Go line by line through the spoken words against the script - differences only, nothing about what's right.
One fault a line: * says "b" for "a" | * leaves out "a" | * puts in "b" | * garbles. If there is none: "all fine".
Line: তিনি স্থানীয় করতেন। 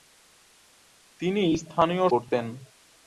all fine